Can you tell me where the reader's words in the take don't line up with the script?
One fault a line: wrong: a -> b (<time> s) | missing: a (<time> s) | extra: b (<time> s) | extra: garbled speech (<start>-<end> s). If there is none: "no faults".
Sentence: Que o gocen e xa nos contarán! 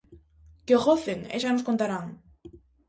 no faults